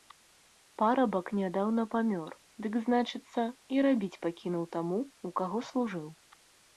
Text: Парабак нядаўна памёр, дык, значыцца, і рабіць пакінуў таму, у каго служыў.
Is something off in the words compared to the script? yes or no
no